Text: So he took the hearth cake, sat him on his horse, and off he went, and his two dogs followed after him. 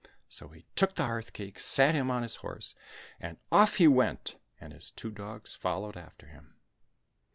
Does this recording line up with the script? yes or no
yes